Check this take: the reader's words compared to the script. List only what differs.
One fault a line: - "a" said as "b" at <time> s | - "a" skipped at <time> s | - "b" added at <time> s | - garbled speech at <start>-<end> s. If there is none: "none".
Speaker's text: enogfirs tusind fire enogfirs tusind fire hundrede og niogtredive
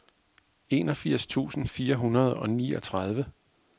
- "enogfirs tusind fire" skipped at 1.9 s